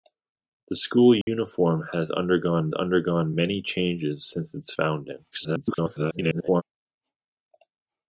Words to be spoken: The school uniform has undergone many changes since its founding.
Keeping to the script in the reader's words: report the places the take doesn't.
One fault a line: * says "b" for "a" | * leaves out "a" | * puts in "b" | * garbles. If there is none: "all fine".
* puts in "undergone"
* garbles